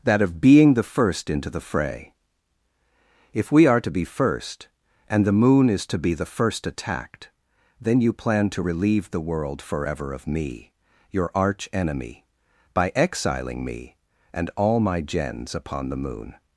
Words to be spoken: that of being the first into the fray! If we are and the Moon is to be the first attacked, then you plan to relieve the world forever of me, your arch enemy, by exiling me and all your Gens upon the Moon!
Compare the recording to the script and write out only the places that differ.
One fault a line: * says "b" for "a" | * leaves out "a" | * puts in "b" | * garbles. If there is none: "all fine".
* puts in "to be first"
* says "my" for "your"